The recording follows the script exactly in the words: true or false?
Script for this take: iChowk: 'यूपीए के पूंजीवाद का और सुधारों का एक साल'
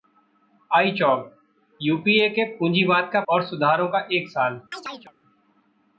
true